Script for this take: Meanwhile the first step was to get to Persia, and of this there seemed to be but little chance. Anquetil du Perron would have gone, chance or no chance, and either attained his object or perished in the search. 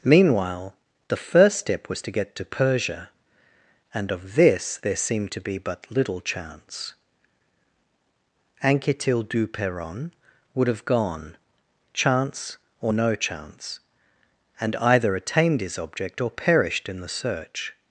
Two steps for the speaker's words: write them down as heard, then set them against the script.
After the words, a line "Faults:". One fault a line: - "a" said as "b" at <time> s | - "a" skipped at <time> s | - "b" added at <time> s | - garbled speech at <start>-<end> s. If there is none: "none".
Meanwhile the first step was to get to Persia, and of this there seemed to be but little chance. Anquetil du Perron would have gone, chance or no chance, and either attained his object or perished in the search.
Faults:
none